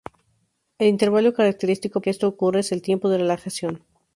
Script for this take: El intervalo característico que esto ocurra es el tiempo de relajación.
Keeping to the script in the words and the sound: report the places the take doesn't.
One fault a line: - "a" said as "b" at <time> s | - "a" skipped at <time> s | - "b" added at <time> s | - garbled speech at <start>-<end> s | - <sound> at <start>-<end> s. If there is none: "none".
none